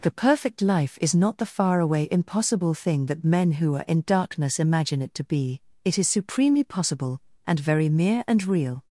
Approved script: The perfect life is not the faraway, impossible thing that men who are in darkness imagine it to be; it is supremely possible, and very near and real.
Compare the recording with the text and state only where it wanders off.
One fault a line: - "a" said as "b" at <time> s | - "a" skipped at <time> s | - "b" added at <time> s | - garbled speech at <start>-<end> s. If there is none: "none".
- "near" said as "mere" at 7.9 s